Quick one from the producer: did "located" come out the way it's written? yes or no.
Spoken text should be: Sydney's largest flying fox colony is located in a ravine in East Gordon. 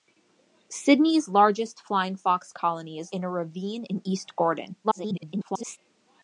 no